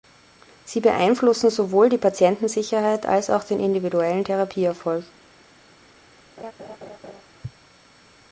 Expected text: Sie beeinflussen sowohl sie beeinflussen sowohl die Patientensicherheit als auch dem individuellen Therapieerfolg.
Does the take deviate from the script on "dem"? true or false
true